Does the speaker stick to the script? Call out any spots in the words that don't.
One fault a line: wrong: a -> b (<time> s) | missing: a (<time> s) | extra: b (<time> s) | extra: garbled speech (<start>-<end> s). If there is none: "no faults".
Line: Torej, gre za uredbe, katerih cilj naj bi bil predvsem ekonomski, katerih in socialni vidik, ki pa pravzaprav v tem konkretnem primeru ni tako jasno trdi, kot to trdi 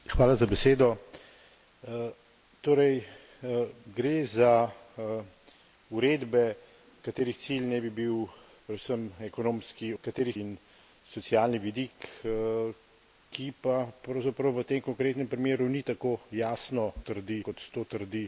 no faults